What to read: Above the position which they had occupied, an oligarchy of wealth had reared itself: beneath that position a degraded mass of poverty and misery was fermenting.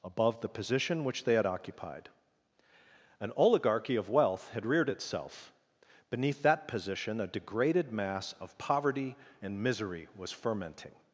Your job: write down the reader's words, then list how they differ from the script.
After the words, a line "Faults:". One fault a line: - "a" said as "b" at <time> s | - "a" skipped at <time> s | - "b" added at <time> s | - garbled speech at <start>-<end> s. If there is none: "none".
Above the position which they had occupied, an oligarchy of wealth had reared itself: beneath that position a degraded mass of poverty and misery was fermenting.
Faults:
none